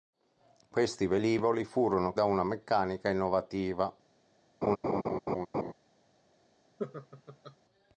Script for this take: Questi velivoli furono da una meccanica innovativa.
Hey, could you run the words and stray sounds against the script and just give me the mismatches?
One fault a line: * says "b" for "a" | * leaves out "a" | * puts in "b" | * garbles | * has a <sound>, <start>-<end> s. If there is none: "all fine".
* has a laugh, 4.6-5.7 s
* has a laugh, 6.8-7.6 s